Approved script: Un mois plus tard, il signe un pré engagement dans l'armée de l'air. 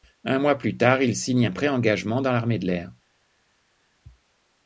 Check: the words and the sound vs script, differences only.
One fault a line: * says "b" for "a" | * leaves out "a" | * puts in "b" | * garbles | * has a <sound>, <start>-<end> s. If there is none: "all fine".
all fine